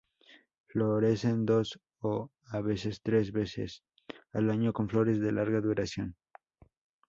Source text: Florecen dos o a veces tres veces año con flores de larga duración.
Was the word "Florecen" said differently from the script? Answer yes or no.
no